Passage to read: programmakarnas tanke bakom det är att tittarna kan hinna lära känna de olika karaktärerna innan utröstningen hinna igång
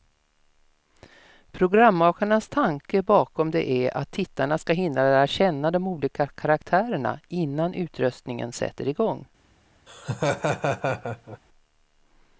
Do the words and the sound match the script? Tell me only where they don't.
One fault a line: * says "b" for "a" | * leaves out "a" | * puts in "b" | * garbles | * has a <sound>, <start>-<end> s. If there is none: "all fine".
* says "ska" for "kan"
* says "sätter" for "hinna"
* has a laugh, 9.9-11.4 s